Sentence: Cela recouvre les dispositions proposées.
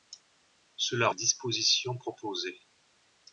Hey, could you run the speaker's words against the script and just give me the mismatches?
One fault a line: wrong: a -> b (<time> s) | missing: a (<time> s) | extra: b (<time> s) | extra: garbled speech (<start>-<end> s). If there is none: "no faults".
missing: recouvre (1.1 s)